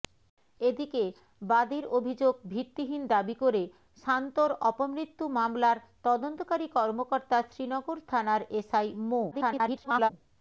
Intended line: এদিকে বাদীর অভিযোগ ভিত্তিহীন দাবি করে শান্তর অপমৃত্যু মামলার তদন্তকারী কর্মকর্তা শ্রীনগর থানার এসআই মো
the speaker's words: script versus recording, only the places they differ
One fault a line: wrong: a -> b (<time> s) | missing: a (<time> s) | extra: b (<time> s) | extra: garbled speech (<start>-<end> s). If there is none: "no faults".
extra: garbled speech (9.3-10.1 s)